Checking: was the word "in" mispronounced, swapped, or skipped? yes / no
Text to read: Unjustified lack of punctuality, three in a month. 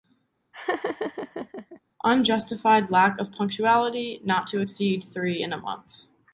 no